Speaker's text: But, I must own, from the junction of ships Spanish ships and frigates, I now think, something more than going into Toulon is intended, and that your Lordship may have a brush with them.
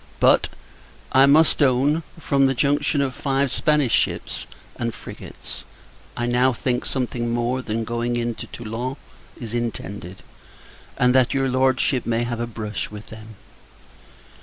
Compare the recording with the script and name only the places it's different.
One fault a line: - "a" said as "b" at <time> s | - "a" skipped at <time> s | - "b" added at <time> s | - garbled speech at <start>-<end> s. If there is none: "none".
- "ships" said as "five" at 3.1 s